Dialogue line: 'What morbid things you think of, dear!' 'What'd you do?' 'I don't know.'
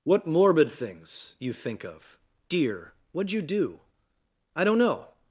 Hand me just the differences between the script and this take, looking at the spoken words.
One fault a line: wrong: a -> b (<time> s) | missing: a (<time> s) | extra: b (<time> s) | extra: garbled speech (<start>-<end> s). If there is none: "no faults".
no faults